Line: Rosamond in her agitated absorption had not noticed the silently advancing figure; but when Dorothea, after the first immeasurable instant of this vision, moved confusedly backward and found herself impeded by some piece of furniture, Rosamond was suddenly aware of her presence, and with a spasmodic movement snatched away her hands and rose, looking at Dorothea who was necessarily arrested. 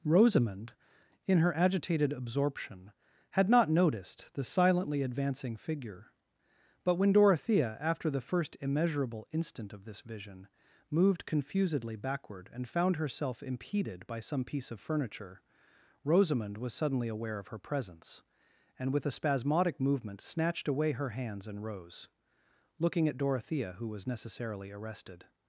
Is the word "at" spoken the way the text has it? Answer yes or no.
yes